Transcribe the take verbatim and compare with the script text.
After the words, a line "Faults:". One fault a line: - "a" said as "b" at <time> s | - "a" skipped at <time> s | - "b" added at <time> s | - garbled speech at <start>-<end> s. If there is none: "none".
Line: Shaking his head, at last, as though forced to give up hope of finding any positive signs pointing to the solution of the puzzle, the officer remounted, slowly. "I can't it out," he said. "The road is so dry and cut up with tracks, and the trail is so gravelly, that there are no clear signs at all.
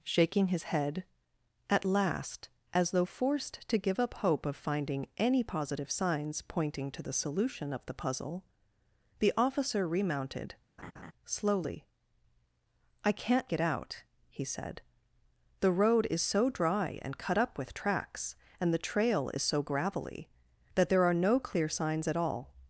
Shaking his head, at last, as though forced to give up hope of finding any positive signs pointing to the solution of the puzzle, the officer remounted, slowly. "I can't it out," he said. "The road is so dry and cut up with tracks, and the trail is so gravelly, that there are no clear signs at all.
Faults:
none